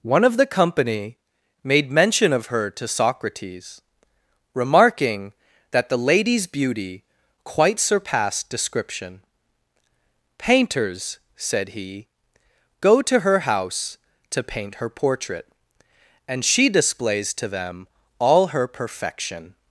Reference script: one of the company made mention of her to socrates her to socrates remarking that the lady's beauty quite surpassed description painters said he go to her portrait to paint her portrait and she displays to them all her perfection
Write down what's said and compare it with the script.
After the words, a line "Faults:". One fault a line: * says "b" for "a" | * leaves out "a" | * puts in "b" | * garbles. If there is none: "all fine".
one of the company made mention of her to socrates remarking that the lady's beauty quite surpassed description painters said he go to her house to paint her portrait and she displays to them all her perfection
Faults:
* leaves out "her to socrates"
* says "house" for "portrait"